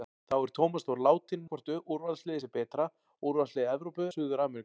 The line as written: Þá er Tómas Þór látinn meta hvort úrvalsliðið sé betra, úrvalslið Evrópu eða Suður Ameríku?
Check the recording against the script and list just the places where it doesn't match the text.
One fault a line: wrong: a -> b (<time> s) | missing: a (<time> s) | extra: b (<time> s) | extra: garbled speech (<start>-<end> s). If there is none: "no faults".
missing: meta (1.5 s)
missing: eða (4.1 s)